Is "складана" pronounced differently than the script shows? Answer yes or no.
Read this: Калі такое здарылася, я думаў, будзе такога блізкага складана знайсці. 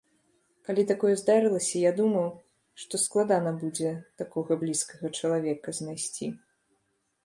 yes